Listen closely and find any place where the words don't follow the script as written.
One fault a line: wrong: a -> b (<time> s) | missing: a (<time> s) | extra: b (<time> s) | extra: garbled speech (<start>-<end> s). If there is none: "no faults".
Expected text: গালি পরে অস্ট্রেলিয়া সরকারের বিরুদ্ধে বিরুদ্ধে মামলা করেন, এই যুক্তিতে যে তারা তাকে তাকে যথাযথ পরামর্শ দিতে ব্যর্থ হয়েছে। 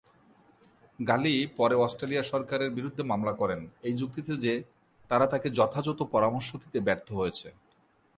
missing: বিরুদ্ধে (3.0 s)
missing: তাকে (5.5 s)